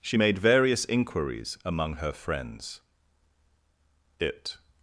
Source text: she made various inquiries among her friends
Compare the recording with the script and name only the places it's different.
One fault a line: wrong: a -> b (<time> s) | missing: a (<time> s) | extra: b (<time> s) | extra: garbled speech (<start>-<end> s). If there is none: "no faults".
extra: it (4.2 s)